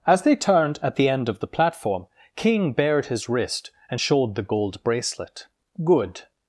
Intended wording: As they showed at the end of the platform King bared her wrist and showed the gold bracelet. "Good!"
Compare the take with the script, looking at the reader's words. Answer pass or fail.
fail